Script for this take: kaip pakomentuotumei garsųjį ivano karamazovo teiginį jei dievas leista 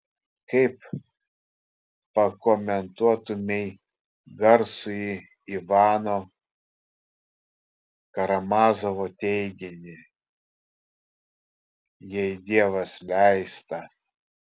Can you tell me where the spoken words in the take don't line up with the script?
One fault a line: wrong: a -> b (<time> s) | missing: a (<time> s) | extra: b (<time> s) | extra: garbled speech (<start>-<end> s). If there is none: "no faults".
no faults